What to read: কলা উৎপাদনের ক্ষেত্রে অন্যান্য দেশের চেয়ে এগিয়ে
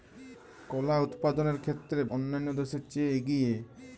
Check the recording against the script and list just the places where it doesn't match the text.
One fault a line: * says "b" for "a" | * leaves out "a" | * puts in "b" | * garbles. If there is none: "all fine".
all fine